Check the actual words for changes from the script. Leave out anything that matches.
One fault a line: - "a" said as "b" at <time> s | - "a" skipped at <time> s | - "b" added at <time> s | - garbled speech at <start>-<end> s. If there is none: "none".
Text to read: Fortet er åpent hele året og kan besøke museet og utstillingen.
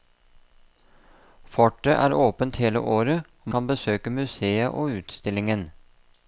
none